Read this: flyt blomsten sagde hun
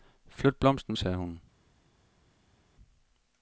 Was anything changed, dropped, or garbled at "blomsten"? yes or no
no